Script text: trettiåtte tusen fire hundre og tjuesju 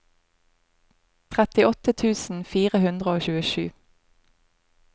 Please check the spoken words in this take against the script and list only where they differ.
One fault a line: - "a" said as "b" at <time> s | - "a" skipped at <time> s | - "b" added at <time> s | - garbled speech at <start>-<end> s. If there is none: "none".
none